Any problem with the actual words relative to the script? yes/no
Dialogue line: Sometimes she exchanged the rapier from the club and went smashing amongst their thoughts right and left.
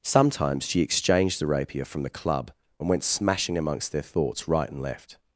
no